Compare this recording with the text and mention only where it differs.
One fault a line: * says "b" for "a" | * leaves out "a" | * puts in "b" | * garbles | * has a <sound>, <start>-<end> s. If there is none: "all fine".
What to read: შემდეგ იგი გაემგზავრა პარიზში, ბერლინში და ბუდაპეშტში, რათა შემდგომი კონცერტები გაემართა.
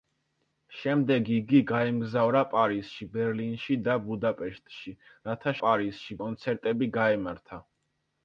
* says "პარიზში" for "შემდგომი"